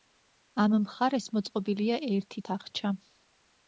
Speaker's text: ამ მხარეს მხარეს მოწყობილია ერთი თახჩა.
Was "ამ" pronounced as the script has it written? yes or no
yes